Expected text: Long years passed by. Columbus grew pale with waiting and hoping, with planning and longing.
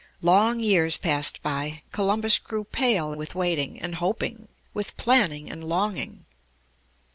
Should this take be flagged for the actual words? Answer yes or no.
no